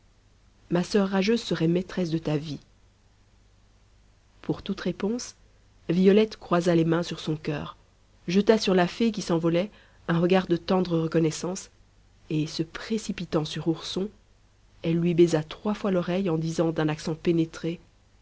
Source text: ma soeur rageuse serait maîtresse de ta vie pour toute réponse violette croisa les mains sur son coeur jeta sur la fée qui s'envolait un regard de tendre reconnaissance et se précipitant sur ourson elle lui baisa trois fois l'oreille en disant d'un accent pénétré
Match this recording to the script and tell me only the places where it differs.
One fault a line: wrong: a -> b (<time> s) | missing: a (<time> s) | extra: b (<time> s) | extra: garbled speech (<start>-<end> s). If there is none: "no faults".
no faults